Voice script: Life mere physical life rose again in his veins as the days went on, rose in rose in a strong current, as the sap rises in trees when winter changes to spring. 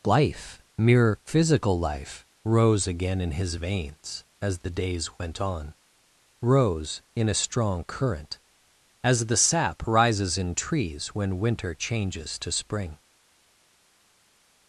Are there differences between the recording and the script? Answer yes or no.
yes